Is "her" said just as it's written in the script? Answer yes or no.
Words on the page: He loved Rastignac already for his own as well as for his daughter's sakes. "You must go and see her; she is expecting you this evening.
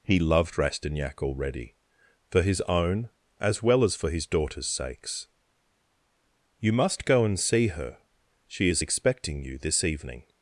yes